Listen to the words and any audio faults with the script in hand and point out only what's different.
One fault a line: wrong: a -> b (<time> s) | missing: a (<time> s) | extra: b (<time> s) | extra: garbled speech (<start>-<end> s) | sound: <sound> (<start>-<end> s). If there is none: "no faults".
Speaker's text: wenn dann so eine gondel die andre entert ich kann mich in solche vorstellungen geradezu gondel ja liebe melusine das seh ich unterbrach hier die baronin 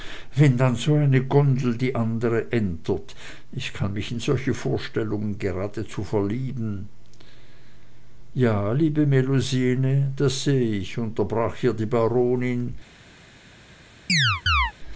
wrong: gondel -> verlieben (6.0 s)
sound: chirp (14.1-14.7 s)